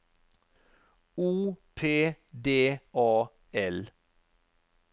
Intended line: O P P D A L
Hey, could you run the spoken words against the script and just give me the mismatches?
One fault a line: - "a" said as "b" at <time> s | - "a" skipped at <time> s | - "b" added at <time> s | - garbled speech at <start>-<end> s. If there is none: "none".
- "P" skipped at 2.1 s